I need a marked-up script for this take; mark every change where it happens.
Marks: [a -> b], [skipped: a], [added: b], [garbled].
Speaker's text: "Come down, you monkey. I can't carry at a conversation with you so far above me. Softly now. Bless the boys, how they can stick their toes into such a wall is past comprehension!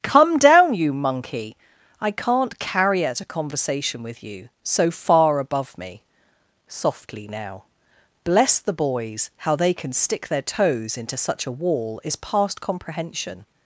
"Come down, you monkey. I can't carry at a conversation with you so far above me. Softly now. Bless the boys, how they can stick their toes into such a wall is past comprehension!